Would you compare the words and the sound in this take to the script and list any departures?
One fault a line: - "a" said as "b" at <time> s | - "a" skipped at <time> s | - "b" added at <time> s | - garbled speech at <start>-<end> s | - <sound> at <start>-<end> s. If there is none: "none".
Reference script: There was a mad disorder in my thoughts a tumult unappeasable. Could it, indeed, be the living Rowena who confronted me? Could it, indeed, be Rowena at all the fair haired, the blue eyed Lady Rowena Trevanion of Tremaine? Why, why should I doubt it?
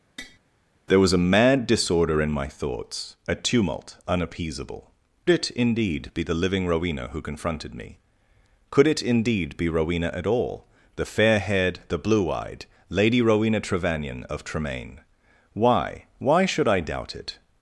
- tap at 0.2-0.4 s
- "Could" skipped at 4.9 s